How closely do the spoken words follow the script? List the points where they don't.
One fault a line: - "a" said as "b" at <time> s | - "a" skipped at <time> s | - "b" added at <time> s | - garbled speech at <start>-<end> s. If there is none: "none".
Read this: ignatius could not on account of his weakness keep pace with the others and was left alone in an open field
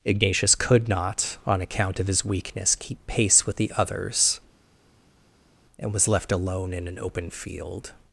none